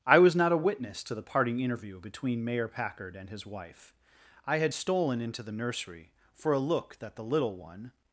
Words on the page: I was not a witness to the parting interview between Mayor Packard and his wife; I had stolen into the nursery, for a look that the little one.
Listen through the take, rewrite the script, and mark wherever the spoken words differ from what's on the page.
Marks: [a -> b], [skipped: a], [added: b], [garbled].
I was not a witness to the parting interview between Mayor Packard and his wife; I had stolen into the nursery, for a look that the little one.